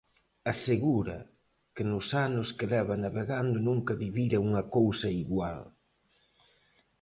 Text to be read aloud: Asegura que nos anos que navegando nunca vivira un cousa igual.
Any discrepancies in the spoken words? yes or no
yes